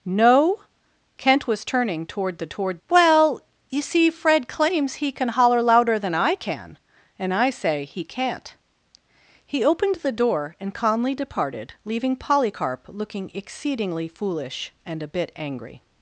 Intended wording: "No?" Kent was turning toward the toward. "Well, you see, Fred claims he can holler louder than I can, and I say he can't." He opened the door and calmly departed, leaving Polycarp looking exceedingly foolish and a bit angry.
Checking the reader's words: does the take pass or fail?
pass